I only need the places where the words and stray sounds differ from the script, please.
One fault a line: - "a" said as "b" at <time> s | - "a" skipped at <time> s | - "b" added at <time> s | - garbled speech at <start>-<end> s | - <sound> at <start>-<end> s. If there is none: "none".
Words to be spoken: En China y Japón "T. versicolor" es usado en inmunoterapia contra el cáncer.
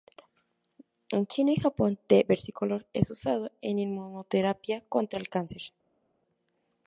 none